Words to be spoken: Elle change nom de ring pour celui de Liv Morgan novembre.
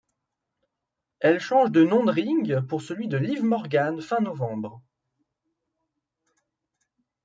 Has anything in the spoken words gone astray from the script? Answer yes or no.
yes